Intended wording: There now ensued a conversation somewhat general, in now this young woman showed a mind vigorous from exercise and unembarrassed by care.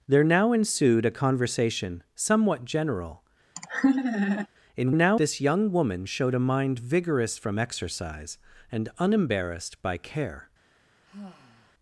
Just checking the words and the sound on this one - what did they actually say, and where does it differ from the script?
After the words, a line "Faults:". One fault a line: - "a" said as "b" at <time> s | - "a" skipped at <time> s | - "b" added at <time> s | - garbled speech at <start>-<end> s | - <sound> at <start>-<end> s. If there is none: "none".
There now ensued a conversation somewhat general, in now this young woman showed a mind vigorous from exercise and unembarrassed by care.
Faults:
- laugh at 3.6-4.5 s
- sigh at 11.1-11.7 s